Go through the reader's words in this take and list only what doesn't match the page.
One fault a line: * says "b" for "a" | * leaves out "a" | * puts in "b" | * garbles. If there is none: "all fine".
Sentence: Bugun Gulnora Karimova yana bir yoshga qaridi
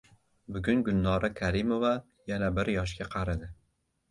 all fine